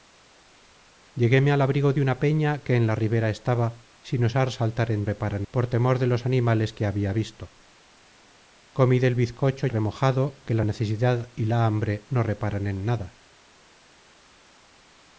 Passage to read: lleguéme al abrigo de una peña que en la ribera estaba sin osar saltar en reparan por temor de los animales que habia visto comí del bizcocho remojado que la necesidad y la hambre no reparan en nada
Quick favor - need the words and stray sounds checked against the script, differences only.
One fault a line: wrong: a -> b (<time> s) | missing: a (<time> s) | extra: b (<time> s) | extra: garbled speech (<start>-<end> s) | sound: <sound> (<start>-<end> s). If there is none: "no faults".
no faults